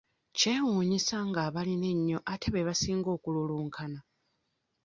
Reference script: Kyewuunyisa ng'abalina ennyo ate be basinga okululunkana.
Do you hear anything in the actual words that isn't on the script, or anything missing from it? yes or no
no